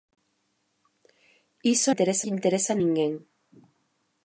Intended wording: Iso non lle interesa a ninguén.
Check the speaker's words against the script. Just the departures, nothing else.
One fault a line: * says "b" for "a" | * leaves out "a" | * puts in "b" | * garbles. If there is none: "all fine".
* says "interesa" for "non"